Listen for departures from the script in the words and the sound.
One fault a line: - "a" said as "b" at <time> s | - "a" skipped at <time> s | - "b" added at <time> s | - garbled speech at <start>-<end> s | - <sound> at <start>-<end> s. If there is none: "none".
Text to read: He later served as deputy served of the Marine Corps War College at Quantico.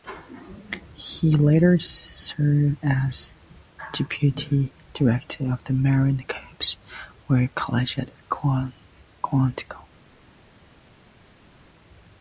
- "served" said as "director" at 4.9 s